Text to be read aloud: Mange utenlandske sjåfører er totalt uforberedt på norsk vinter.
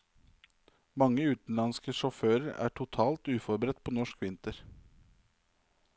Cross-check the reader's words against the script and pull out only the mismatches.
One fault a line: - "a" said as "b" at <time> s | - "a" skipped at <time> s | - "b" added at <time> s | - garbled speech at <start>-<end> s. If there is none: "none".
none